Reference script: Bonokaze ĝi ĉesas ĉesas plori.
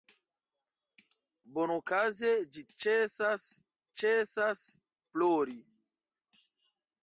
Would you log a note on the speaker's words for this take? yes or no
no